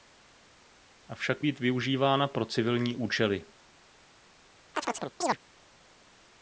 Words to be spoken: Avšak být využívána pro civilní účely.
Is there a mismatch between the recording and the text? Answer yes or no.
no